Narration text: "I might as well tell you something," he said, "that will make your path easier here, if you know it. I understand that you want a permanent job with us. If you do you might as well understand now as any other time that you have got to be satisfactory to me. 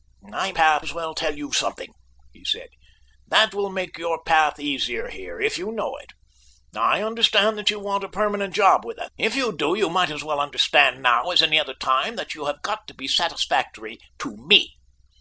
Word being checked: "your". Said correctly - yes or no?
yes